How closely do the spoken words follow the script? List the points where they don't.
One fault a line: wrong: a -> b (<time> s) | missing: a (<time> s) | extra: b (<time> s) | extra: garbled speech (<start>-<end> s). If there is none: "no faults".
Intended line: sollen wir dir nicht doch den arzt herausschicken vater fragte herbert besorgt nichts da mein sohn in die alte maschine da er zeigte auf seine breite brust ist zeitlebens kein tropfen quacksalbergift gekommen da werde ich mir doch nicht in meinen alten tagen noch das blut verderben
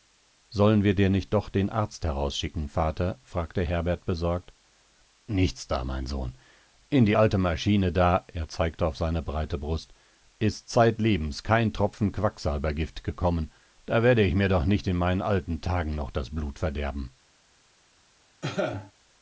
no faults